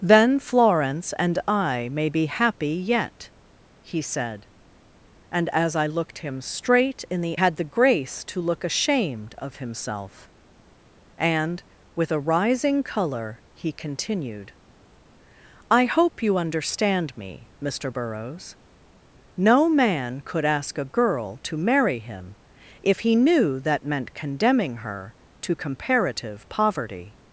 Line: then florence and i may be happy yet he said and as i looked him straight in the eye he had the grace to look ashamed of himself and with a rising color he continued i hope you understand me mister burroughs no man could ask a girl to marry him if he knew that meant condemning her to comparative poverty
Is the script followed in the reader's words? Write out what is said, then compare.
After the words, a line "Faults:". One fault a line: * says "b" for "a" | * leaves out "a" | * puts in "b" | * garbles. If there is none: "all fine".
then florence and i may be happy yet he said and as i looked him straight in the had the grace to look ashamed of himself and with a rising color he continued i hope you understand me mister burroughs no man could ask a girl to marry him if he knew that meant condemning her to comparative poverty
Faults:
* leaves out "eye he"